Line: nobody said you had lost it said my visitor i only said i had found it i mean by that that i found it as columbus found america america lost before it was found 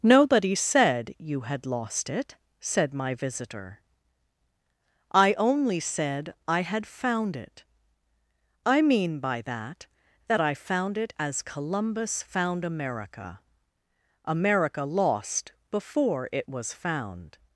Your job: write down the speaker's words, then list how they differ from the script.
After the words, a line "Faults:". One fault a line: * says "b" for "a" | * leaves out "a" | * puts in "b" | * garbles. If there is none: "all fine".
nobody said you had lost it said my visitor i only said i had found it i mean by that that i found it as columbus found america america lost before it was found
Faults:
all fine